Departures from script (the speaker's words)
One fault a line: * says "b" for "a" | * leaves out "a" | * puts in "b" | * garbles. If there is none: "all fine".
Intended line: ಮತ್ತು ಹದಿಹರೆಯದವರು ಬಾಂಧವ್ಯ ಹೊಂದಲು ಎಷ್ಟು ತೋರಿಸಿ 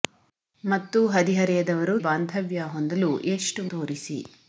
all fine